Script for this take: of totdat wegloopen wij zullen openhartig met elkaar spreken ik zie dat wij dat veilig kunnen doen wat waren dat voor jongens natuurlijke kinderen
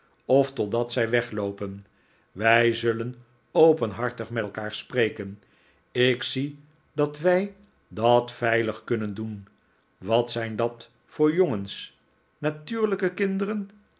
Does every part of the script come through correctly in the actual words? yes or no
no